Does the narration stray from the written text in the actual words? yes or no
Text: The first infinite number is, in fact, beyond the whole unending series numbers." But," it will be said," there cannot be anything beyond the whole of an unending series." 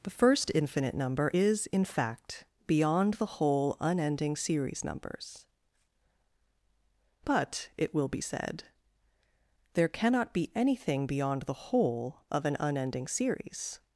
no